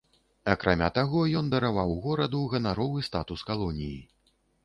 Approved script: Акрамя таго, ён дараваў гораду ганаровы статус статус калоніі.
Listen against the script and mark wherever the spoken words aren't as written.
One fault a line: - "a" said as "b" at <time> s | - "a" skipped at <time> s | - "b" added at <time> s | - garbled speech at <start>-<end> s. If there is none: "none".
- "статус" skipped at 3.5 s